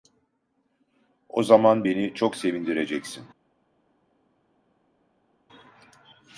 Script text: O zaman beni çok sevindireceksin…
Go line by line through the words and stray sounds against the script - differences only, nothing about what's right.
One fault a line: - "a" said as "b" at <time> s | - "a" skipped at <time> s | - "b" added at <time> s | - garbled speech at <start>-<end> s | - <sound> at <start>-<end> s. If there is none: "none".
none